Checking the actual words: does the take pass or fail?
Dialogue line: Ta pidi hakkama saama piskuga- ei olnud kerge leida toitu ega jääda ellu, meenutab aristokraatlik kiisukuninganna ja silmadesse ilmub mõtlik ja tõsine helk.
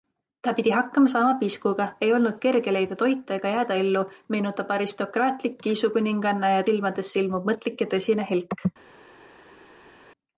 pass